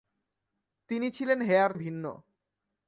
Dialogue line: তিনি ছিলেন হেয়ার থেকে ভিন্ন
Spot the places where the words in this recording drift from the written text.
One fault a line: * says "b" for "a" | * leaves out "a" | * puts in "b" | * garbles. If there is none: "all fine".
* leaves out "থেকে"